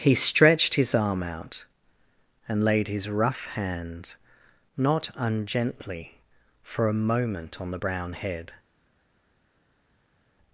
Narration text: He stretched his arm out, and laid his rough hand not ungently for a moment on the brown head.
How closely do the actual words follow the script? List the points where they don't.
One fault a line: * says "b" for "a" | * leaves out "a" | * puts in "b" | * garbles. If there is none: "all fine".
all fine